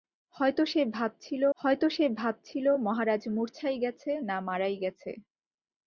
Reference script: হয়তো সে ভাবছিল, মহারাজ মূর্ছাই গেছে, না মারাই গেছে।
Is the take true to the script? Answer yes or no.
no